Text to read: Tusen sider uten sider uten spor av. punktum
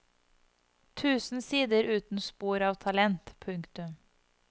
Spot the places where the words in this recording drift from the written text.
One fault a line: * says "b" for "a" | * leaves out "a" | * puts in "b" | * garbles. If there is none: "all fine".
* leaves out "sider uten"
* puts in "talent"